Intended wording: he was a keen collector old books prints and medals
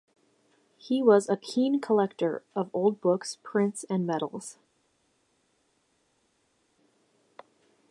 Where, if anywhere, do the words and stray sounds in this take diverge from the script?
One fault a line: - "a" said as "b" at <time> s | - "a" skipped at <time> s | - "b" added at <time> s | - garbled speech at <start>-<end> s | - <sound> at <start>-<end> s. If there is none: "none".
- "of" added at 2.5 s